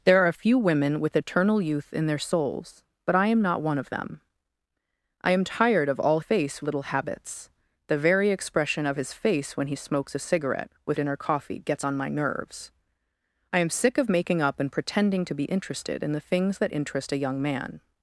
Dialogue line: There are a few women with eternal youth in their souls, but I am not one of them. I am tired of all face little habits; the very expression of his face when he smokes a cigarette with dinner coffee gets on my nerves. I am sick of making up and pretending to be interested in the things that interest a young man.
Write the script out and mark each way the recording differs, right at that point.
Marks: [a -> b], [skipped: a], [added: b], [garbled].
There are a few women with eternal youth in their souls, but I am not one of them. I am tired of all face little habits; the very expression of his face when he smokes a cigarette with dinner coffee gets on my nerves. I am sick of making up and pretending to be interested in the things that interest a young man.